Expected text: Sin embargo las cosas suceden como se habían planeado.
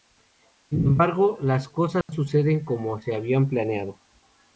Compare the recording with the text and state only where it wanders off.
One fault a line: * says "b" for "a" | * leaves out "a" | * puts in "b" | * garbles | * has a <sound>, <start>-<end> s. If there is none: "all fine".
* has a dropout, 2.0-2.1 s